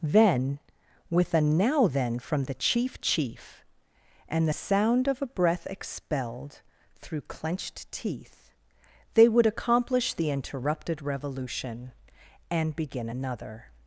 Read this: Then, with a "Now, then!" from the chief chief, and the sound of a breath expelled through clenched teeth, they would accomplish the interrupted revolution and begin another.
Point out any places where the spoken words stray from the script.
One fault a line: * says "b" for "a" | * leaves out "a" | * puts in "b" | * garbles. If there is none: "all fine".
all fine